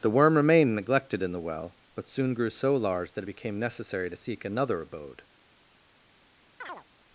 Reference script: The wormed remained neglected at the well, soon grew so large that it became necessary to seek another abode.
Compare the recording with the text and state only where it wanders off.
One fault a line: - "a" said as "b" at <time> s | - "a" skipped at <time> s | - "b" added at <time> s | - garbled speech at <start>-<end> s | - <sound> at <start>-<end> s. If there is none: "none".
- "wormed" said as "worm" at 0.1 s
- "at" said as "in" at 1.2 s
- "but" added at 1.9 s
- chirp at 6.6-6.9 s